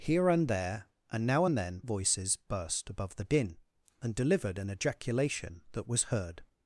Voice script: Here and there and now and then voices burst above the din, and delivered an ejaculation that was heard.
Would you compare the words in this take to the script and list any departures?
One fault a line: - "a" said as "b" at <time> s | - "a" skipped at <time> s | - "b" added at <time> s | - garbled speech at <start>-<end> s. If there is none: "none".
none